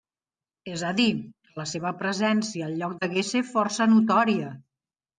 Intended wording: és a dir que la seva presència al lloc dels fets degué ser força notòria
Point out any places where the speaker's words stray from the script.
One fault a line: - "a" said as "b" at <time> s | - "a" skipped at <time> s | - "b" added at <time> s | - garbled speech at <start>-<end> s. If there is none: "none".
- "dels fets" skipped at 3.0 s